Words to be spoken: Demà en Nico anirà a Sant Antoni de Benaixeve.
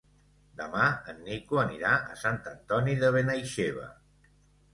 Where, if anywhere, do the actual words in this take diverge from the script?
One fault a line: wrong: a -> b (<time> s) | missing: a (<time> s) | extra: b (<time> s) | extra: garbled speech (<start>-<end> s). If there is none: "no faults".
no faults